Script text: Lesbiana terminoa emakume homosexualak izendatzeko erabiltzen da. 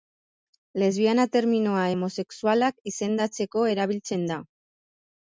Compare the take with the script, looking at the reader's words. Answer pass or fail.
fail